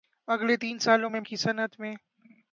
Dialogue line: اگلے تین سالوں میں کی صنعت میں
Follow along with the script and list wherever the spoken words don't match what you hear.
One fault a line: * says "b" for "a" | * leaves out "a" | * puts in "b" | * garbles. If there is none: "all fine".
all fine